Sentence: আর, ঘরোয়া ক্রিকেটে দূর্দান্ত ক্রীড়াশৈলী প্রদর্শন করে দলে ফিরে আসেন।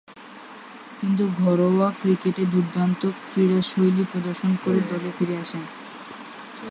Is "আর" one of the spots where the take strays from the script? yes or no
yes